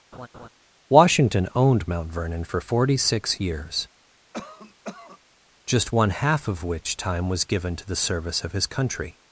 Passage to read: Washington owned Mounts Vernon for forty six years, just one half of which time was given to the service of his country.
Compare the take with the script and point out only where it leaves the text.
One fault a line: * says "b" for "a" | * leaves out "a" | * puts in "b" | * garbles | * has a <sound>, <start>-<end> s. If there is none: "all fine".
* has a laugh, 0.1-0.5 s
* says "Mount" for "Mounts"
* has a cough, 4.3-5.2 s